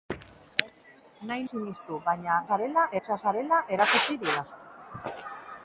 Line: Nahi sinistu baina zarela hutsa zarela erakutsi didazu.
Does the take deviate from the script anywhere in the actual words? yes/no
no